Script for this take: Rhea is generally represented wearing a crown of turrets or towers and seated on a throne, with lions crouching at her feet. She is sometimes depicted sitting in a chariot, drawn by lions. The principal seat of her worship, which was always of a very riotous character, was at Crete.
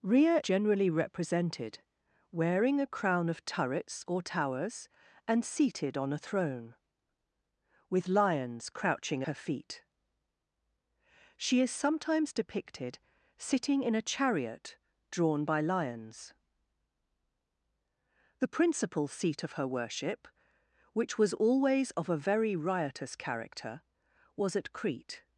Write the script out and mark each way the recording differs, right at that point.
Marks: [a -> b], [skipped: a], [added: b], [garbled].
Rhea [skipped: is] generally represented wearing a crown of turrets or towers and seated on a throne, with lions crouching [skipped: at] her feet. She is sometimes depicted sitting in a chariot, drawn by lions. The principal seat of her worship, which was always of a very riotous character, was at Crete.